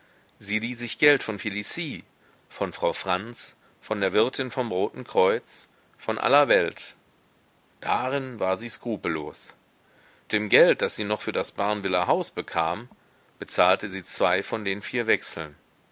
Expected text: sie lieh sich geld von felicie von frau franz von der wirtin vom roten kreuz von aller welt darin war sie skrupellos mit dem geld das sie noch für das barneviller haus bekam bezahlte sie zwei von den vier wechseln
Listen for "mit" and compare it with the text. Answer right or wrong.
wrong